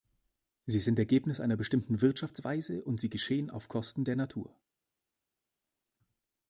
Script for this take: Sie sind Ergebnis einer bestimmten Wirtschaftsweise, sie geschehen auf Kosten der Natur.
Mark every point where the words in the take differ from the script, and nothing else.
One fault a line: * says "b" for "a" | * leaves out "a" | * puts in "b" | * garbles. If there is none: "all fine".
* puts in "und"